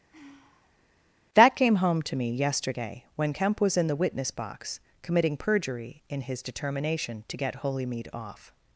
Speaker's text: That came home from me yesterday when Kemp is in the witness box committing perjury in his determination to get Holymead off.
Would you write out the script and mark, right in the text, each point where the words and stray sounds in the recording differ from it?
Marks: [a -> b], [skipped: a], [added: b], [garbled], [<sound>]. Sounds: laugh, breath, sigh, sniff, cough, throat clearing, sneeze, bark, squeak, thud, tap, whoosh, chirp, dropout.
[sigh] That came home [from -> to] me yesterday when Kemp [is -> was] in the witness box committing perjury in his determination to get Holymead off.